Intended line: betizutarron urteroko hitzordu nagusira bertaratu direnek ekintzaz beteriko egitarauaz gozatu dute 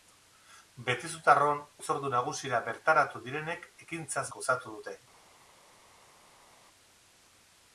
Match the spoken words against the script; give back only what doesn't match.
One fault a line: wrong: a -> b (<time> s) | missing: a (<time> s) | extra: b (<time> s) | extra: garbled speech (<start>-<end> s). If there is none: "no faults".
missing: urteroko (1.6 s)
missing: beteriko egitarauaz (4.3 s)